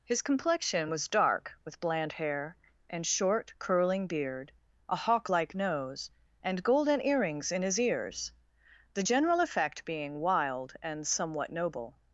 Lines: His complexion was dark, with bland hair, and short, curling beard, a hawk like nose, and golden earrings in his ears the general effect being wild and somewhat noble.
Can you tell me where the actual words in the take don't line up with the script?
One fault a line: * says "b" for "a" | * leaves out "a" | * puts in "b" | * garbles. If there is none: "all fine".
all fine